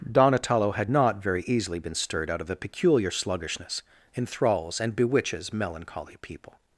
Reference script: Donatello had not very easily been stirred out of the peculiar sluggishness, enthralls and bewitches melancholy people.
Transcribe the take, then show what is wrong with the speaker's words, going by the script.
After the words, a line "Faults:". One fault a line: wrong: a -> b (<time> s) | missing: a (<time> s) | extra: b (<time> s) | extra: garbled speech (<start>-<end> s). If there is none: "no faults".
Donatello had not very easily been stirred out of the peculiar sluggishness, enthralls and bewitches melancholy people.
Faults:
no faults